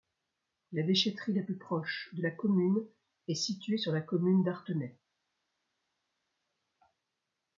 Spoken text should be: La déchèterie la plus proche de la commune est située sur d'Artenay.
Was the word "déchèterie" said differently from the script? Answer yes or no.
no